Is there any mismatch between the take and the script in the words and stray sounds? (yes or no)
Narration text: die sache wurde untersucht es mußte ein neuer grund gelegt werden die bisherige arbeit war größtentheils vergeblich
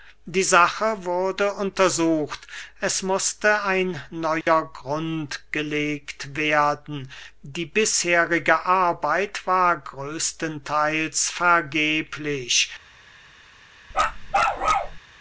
yes